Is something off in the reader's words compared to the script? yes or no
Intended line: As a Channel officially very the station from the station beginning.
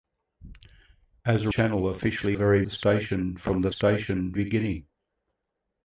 no